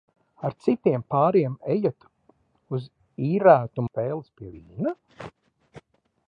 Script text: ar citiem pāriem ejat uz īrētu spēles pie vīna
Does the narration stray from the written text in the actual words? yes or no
no